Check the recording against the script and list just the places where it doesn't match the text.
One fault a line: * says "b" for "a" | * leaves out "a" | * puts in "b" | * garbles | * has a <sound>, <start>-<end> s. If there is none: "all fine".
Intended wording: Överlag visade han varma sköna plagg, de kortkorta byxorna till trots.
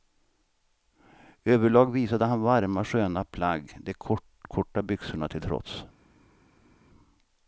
all fine